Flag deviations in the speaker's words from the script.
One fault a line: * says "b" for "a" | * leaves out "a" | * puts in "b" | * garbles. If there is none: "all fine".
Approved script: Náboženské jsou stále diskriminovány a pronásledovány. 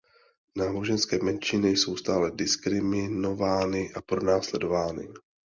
* puts in "menšiny"